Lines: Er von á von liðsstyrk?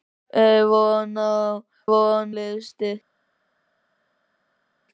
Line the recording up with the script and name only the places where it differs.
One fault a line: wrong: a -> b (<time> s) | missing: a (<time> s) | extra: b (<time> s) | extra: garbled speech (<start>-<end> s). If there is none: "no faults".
no faults